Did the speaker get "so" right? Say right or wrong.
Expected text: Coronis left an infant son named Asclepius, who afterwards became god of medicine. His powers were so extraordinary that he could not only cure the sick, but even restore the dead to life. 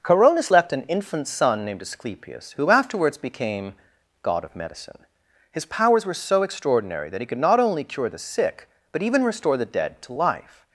right